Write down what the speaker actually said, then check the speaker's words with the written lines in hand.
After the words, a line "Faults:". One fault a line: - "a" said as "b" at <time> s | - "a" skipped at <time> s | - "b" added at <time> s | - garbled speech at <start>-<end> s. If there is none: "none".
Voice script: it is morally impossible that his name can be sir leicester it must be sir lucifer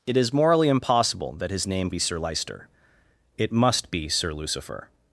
it is morally impossible that his name be sir leicester it must be sir lucifer
Faults:
- "can" skipped at 1.9 s